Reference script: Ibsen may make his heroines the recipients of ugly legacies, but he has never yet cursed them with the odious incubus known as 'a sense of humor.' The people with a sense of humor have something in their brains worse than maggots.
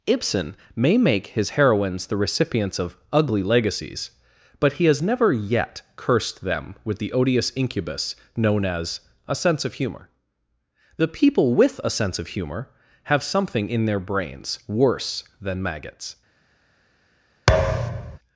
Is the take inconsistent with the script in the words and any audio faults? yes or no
yes